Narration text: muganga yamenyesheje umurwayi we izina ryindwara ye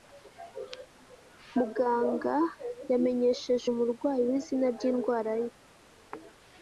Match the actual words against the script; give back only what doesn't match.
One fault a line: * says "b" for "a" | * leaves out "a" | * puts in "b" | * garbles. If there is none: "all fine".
all fine